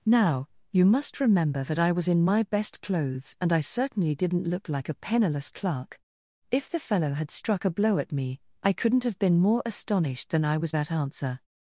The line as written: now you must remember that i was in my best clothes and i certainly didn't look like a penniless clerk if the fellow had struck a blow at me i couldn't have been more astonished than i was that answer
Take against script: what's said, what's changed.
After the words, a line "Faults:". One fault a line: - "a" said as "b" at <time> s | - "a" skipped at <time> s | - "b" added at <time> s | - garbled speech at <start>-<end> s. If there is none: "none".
now you must remember that i was in my best clothes and i certainly didn't look like a penniless clerk if the fellow had struck a blow at me i couldn't have been more astonished than i was that answer
Faults:
none